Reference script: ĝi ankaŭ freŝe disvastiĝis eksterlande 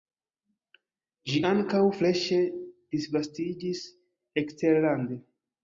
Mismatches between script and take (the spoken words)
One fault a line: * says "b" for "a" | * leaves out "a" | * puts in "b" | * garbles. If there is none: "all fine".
all fine